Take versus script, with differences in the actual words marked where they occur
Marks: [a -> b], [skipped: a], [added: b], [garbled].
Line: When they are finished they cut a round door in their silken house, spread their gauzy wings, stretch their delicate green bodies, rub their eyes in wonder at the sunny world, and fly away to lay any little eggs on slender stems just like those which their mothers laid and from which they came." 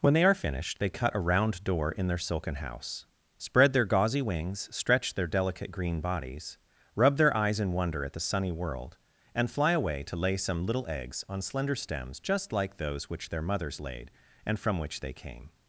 When they are finished they cut a round door in their silken house, spread their gauzy wings, stretch their delicate green bodies, rub their eyes in wonder at the sunny world, and fly away to lay [any -> some] little eggs on slender stems just like those which their mothers laid and from which they came."